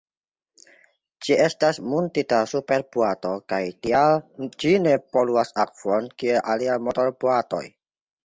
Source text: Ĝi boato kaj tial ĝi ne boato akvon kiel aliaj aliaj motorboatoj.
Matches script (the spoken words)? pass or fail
fail